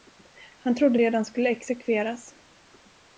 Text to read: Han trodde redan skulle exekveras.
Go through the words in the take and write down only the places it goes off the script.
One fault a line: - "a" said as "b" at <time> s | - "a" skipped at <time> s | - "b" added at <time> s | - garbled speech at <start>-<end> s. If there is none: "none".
none